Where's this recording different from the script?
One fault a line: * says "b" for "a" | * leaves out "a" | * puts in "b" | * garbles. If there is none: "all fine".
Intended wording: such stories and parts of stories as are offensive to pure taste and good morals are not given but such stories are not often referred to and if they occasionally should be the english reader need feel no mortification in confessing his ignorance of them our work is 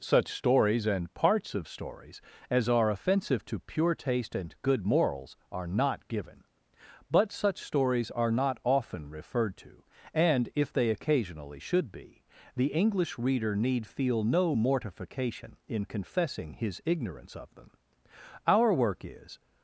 all fine